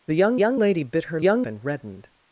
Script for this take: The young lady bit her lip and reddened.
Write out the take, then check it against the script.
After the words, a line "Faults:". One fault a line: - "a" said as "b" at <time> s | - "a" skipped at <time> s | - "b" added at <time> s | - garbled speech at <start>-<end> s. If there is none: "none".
The young young lady bit her young and reddened.
Faults:
- "young" added at 0.4 s
- "lip" said as "young" at 1.2 s